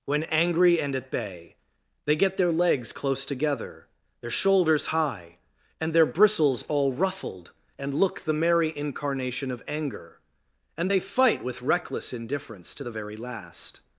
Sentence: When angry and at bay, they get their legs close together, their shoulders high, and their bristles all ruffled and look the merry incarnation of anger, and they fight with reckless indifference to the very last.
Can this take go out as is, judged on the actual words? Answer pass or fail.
pass